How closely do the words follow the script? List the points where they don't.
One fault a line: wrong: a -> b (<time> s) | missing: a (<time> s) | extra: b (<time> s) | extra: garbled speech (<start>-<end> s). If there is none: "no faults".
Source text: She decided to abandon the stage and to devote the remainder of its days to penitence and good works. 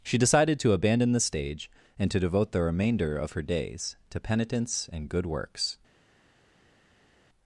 wrong: its -> her (3.3 s)